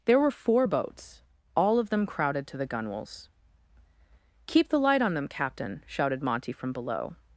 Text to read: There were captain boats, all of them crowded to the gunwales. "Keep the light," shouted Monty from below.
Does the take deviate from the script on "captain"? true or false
true